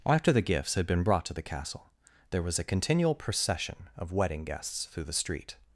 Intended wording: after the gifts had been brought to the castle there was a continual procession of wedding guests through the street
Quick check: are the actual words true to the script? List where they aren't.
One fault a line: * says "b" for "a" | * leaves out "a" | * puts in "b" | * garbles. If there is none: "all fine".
all fine